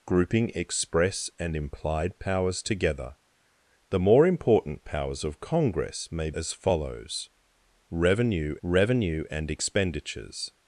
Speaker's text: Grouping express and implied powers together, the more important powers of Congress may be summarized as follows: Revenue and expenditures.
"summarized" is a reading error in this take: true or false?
true